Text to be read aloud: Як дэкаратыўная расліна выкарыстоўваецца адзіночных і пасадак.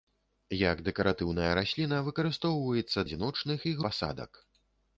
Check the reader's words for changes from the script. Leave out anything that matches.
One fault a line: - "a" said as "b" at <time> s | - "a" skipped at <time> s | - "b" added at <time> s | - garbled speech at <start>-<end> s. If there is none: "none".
none